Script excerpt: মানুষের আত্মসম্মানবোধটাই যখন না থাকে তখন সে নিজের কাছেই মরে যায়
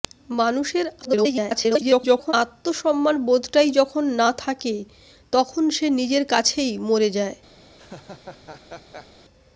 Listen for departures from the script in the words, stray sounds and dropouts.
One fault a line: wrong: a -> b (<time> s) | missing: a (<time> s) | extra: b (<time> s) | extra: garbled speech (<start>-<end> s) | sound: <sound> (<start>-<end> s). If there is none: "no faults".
extra: garbled speech (1.0-2.3 s)
sound: laugh (7.8-9.1 s)